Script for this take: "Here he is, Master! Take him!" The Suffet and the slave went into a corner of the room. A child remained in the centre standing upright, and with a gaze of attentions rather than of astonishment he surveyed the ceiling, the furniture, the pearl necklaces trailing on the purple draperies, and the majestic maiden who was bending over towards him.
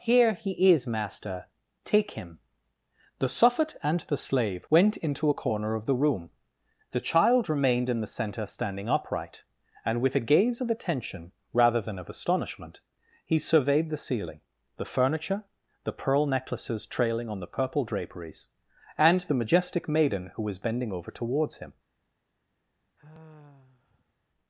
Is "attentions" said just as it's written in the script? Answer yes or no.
no